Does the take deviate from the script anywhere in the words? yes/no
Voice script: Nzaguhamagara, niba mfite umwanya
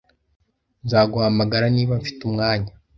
no